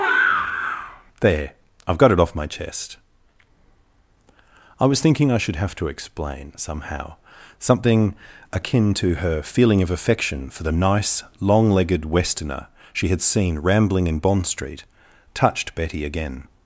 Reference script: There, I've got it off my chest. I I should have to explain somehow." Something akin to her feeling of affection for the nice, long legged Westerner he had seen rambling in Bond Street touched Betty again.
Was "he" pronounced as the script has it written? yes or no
no